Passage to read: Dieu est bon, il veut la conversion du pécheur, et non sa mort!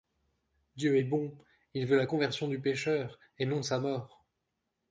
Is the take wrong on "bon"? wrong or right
right